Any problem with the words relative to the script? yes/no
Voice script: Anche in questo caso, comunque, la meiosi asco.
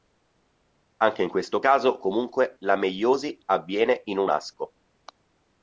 yes